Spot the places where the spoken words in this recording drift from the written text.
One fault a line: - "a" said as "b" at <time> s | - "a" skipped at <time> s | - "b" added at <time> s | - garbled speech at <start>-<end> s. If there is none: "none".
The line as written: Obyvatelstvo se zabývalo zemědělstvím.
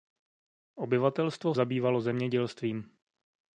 - "se" skipped at 1.6 s